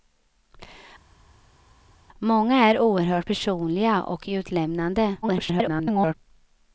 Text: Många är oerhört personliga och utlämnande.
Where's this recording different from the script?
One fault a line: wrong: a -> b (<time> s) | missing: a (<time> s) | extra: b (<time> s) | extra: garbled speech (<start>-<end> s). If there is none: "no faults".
extra: garbled speech (5.2-6.1 s)